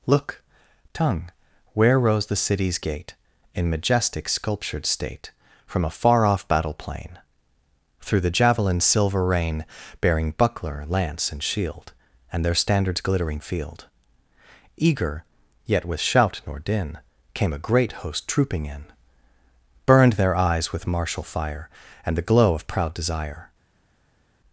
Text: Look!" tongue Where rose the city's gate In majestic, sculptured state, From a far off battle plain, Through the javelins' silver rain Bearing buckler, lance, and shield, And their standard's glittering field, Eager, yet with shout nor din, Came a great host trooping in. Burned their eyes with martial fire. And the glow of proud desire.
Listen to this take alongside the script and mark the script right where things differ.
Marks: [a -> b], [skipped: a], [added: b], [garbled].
Look!" tongue Where rose the city's gate In majestic, sculptured state, From a far off battle plain, Through the javelins' silver rain Bearing buckler, lance, and shield, And their standard's glittering field, Eager, yet with shout nor din, Came a great host trooping in. Burned their eyes with martial fire. And the glow of proud desire.